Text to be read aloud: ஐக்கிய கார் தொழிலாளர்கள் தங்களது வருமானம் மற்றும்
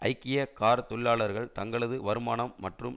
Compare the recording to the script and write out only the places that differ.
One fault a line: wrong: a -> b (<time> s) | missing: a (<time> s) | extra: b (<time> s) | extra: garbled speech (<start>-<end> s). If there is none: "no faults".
no faults